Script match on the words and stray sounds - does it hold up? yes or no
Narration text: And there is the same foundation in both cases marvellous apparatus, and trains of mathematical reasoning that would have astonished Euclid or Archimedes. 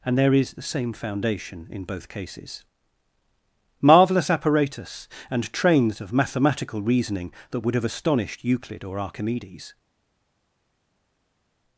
yes